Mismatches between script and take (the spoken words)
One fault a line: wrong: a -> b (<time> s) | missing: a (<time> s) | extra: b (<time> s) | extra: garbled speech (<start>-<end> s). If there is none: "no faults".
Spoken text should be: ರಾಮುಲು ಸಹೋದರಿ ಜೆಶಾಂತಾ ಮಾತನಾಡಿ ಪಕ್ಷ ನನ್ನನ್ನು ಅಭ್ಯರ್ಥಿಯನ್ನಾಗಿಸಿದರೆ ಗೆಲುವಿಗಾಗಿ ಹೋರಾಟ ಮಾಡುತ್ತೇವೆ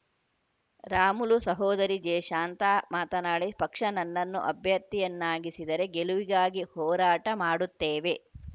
no faults